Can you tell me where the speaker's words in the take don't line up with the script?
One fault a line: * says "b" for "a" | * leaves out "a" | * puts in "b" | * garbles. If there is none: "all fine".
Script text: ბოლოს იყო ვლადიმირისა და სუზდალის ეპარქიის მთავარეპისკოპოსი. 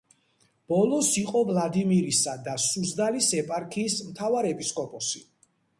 all fine